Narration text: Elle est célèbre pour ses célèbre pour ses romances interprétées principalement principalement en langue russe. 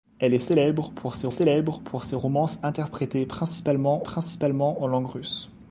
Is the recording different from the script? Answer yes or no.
no